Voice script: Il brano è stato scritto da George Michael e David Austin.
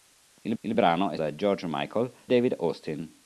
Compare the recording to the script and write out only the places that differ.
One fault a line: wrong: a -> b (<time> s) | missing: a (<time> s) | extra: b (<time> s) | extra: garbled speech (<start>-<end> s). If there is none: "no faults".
extra: il (0.6 s)
missing: stato scritto (1.2 s)
missing: e (2.1 s)